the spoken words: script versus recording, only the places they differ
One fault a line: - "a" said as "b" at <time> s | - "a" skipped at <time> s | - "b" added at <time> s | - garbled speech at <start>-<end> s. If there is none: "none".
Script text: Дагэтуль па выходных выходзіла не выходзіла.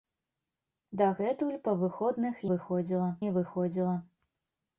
none